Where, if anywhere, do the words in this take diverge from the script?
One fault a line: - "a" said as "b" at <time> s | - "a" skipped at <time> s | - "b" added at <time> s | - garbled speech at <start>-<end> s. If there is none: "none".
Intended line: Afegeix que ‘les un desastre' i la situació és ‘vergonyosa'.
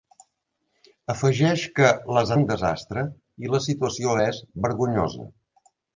none